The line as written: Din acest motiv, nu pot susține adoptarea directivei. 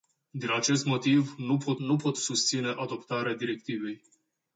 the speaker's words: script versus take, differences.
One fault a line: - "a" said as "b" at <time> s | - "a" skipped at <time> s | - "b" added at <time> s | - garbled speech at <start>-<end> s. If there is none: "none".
- "nu pot" added at 1.8 s